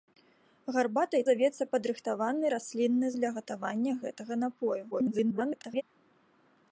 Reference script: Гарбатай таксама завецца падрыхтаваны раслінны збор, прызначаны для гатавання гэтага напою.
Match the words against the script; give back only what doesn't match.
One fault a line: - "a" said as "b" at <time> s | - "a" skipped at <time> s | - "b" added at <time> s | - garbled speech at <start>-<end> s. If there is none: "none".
- "таксама" skipped at 1.2 s
- "збор прызначаны" skipped at 3.1 s
- garbled speech at 4.9-5.8 s